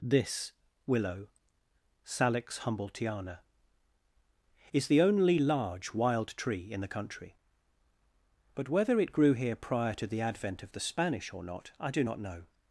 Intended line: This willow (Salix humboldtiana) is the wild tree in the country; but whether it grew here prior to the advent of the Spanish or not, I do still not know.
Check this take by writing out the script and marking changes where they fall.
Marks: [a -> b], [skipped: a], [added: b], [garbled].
This willow (Salix humboldtiana) is the [added: only large] wild tree in the country; but whether it grew here prior to the advent of the Spanish or not, I do [skipped: still] not know.